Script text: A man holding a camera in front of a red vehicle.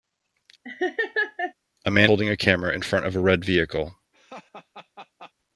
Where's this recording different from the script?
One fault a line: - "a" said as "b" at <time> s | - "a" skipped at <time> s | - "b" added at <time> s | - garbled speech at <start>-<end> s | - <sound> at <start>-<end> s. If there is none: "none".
- laugh at 0.6-1.5 s
- laugh at 4.1-5.3 s